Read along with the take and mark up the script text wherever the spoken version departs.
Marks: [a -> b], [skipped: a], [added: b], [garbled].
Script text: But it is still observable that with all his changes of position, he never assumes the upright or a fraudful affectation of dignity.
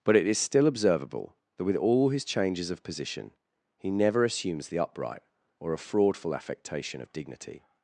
But it is still observable that with all his changes of position, he never assumes the upright or a fraudful affectation of dignity.